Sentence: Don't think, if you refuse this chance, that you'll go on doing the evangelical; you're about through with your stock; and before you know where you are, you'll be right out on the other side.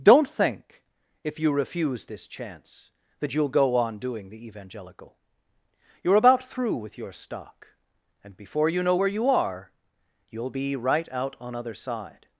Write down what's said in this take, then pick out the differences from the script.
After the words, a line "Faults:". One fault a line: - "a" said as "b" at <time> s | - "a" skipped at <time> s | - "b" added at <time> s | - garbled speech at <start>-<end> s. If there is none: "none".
Don't think, if you refuse this chance, that you'll go on doing the evangelical; you're about through with your stock; and before you know where you are, you'll be right out on other side.
Faults:
- "the" skipped at 11.6 s